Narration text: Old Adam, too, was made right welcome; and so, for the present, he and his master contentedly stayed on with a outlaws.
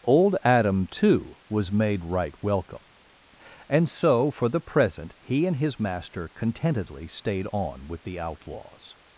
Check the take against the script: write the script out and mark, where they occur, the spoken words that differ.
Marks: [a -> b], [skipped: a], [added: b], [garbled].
Old Adam, too, was made right welcome; and so, for the present, he and his master contentedly stayed on with [a -> the] outlaws.